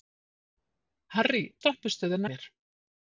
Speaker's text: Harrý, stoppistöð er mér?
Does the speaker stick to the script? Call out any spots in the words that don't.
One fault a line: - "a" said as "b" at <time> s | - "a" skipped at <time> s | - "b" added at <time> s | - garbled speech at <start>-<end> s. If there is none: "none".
none